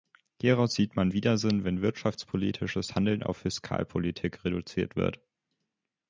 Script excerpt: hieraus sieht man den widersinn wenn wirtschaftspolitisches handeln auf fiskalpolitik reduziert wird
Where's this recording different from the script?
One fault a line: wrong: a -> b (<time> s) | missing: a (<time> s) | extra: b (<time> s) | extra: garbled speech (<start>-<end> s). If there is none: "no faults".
missing: den (1.1 s)